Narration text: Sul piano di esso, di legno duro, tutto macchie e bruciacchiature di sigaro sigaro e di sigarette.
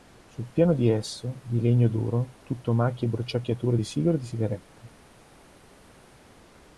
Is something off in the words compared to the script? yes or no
yes